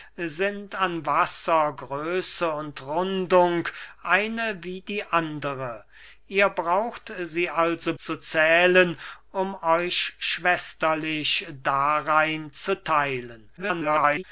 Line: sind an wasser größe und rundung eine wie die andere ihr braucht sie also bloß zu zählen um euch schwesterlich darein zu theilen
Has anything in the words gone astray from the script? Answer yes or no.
yes